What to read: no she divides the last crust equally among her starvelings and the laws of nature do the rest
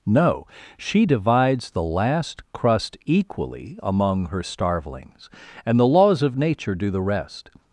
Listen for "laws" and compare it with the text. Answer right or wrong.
right